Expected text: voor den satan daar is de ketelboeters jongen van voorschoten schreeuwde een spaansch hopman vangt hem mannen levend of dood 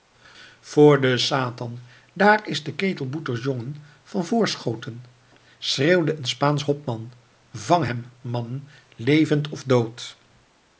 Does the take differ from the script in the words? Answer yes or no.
no